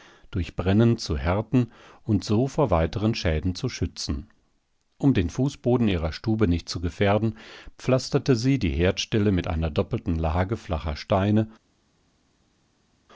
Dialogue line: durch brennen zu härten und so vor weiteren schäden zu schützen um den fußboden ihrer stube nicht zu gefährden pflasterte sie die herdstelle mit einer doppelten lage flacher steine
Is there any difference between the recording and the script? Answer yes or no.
no